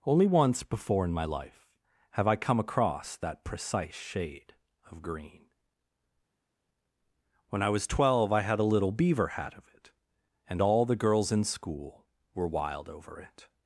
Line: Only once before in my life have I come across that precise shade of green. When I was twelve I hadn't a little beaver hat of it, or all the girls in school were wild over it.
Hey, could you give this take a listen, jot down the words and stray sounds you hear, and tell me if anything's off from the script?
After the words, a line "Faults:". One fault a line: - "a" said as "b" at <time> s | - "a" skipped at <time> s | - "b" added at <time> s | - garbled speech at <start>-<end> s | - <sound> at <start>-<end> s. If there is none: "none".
Only once before in my life have I come across that precise shade of green. When I was twelve I had a little beaver hat of it, and all the girls in school were wild over it.
Faults:
- "hadn't" said as "had" at 8.4 s
- "or" said as "and" at 10.5 s